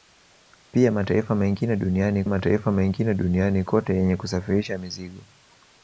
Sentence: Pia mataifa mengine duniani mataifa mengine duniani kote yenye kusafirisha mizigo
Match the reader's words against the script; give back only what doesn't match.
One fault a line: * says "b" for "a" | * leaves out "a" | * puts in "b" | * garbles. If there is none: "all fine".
all fine